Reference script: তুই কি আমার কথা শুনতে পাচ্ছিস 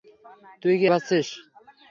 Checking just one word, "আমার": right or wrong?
wrong